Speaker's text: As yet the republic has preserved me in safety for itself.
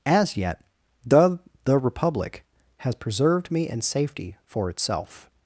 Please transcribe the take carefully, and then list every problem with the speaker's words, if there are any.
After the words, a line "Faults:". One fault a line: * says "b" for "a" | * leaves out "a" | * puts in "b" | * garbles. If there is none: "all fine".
As yet the the republic has preserved me in safety for itself.
Faults:
* puts in "the"